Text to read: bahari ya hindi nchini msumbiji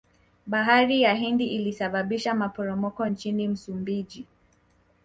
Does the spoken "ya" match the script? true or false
true